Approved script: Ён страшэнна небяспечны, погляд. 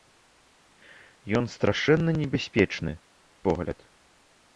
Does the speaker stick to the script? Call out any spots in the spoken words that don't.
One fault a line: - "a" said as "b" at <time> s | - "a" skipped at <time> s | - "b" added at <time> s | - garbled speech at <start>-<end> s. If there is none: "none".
none